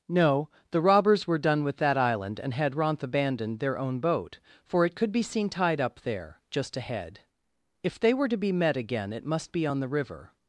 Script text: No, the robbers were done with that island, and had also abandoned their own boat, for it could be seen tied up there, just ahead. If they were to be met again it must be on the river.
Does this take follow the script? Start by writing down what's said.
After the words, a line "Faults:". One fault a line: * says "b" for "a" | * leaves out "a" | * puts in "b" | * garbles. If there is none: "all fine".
No, the robbers were done with that island, and had ronth abandoned their own boat, for it could be seen tied up there, just ahead. If they were to be met again it must be on the river.
Faults:
* says "ronth" for "also"